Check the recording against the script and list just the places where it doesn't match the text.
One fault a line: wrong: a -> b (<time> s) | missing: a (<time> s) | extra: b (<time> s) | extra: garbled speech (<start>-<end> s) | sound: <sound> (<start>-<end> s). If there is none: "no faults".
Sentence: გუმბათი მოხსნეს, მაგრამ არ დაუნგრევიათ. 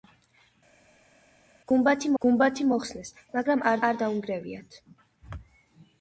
extra: გუმბათი (2.2 s)
extra: არ (3.9 s)